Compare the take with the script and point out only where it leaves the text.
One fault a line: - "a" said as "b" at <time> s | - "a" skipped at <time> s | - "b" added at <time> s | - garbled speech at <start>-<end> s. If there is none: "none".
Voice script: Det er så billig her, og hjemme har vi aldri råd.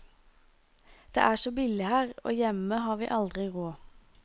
none